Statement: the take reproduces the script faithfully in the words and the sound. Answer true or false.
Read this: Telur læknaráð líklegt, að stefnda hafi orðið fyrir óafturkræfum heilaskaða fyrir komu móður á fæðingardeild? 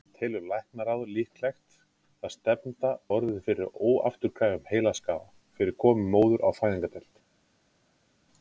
false